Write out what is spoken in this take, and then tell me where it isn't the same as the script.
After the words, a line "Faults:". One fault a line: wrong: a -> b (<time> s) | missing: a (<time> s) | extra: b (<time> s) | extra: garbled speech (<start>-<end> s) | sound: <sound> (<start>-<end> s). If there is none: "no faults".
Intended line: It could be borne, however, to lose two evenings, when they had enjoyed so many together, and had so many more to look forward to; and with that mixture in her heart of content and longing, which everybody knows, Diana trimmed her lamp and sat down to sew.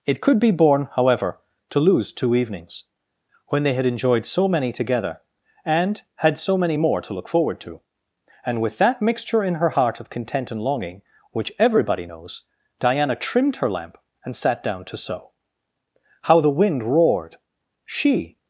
It could be borne, however, to lose two evenings, when they had enjoyed so many together, and had so many more to look forward to; and with that mixture in her heart of content and longing, which everybody knows, Diana trimmed her lamp and sat down to sew. How the wind roared! She
Faults:
extra: How the wind roared She (16.2 s)